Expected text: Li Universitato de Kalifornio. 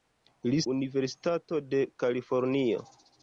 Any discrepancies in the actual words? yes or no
no